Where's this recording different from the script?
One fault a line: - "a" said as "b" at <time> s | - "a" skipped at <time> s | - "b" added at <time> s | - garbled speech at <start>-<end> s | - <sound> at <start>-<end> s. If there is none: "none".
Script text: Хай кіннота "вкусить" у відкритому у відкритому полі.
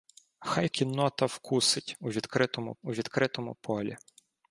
none